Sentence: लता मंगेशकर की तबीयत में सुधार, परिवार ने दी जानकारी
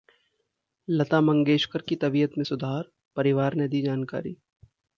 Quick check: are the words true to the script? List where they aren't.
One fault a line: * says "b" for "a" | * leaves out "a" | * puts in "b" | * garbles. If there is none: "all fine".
all fine